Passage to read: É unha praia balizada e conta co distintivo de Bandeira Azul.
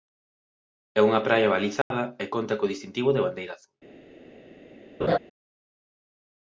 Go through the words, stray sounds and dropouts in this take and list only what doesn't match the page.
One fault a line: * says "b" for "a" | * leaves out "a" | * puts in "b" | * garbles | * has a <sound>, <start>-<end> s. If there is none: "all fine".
* has a dropout, 1.8-1.9 s
* has a laugh, 5.0-5.2 s